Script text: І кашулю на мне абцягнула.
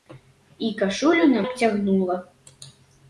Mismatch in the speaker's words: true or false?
true